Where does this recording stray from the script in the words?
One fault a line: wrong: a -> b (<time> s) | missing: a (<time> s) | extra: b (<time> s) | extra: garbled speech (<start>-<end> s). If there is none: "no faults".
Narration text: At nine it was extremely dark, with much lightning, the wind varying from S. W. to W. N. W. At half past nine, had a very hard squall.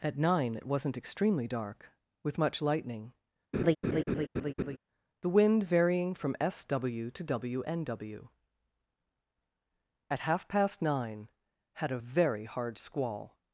wrong: was -> wasn't (0.7 s)